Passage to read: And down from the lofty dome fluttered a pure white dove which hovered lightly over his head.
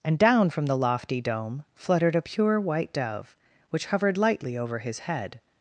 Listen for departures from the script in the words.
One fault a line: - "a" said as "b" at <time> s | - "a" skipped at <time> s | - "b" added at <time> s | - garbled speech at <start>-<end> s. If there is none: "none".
none